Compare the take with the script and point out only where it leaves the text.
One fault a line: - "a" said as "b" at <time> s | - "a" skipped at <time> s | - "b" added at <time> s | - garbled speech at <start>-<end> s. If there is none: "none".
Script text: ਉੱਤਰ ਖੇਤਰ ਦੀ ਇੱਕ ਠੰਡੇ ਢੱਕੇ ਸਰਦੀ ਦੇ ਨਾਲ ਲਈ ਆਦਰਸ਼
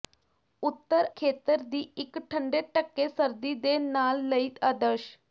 none